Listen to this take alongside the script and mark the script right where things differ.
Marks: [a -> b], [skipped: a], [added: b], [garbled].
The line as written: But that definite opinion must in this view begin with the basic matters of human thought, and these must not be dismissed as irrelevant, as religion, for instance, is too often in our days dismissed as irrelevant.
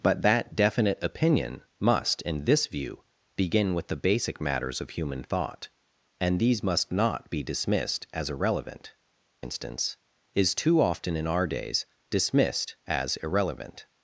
But that definite opinion must in this view begin with the basic matters of human thought, and these must not be dismissed as irrelevant, [skipped: as religion, for] instance, is too often in our days dismissed as irrelevant.